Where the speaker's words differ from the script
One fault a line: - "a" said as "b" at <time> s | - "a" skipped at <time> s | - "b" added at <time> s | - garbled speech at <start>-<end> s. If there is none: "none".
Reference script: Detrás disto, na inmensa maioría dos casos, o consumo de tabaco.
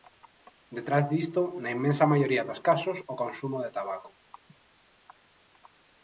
none